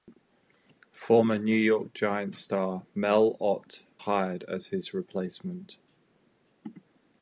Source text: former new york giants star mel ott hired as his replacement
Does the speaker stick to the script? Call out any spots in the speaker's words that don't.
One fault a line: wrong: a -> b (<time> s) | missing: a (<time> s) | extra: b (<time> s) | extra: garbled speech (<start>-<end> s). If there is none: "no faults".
no faults